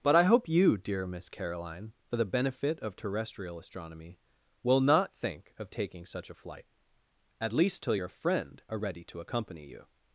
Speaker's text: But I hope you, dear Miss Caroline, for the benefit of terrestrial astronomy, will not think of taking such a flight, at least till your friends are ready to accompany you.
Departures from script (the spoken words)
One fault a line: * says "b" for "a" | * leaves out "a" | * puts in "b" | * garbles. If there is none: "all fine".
* says "friend" for "friends"